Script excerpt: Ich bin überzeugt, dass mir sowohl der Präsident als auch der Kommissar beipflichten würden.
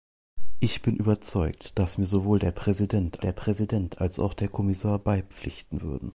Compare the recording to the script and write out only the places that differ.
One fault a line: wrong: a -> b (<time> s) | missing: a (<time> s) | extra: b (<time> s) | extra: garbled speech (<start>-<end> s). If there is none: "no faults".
extra: der Präsident (3.2 s)